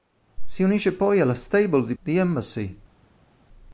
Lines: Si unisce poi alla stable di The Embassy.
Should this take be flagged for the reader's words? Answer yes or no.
no